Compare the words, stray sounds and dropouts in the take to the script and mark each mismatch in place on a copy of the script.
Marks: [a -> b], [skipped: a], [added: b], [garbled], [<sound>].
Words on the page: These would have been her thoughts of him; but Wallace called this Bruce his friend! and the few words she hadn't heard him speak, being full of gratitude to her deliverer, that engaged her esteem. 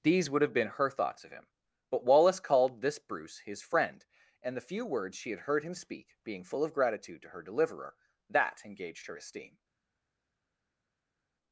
These would have been her thoughts of him; but Wallace called this Bruce his friend! and the few words she [hadn't -> had] heard him speak, being full of gratitude to her deliverer, that engaged her esteem.